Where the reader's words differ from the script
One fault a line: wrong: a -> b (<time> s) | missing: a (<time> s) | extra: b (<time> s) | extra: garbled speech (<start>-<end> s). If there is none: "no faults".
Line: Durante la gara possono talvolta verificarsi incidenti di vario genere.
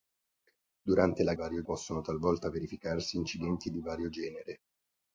wrong: gara -> vario (1.3 s)